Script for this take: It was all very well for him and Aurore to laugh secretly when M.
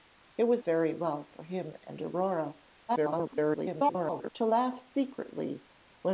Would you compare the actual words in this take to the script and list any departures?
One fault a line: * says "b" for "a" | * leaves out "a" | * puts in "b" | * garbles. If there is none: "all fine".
* leaves out "all"
* garbles